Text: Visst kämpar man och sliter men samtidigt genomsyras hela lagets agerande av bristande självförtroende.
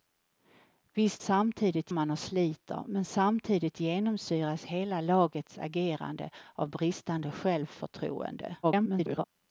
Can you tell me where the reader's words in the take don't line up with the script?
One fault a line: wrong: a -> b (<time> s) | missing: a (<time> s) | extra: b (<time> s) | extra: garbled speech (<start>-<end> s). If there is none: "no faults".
wrong: kämpar -> samtidigt (1.2 s)
extra: garbled speech (8.6-9.3 s)